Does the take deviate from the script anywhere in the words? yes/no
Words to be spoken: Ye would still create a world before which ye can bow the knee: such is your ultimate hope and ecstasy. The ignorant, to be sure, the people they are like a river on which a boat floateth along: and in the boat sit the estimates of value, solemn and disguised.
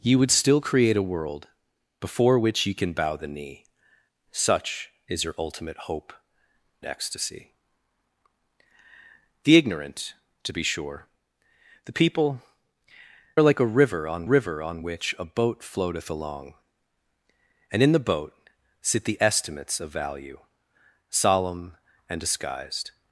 yes